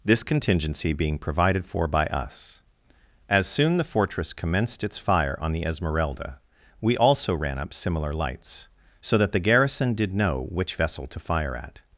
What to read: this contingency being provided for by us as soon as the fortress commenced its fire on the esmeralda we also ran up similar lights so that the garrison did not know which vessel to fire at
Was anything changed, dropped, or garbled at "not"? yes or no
yes